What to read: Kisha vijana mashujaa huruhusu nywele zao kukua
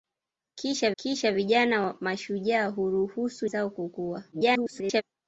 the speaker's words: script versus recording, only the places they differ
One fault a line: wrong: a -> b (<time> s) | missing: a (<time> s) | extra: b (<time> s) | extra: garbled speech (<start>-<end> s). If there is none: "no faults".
extra: kisha (1.0 s)
missing: nywele (3.5 s)
extra: garbled speech (4.3-5.0 s)